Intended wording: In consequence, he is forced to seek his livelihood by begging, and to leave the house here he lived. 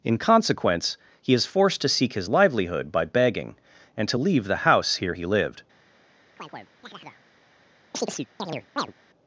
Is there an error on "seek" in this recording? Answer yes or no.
no